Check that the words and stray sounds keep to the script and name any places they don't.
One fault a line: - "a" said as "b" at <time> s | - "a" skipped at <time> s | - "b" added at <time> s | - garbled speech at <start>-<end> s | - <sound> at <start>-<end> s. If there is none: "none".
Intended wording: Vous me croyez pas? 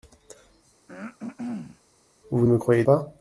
- throat clearing at 0.9-1.8 s